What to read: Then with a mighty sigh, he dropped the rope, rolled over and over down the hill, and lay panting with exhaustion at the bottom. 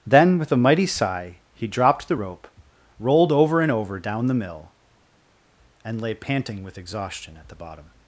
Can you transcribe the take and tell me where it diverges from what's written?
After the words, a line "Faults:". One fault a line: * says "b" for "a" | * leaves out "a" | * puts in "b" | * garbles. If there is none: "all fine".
Then with a mighty sigh, he dropped the rope, rolled over and over down the mill, and lay panting with exhaustion at the bottom.
Faults:
* says "mill" for "hill"